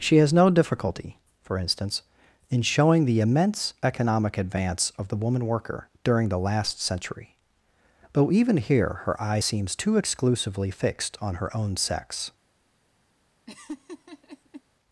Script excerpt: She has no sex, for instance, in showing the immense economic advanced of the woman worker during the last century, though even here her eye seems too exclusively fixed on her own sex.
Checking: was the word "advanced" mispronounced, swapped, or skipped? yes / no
yes